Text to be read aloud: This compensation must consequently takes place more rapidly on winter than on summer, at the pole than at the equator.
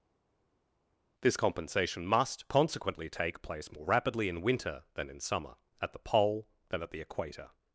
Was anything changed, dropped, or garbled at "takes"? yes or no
yes